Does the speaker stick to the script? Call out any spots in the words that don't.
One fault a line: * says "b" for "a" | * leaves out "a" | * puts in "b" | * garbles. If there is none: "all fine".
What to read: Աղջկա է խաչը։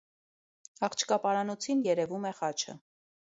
* puts in "պարանոցին երևում"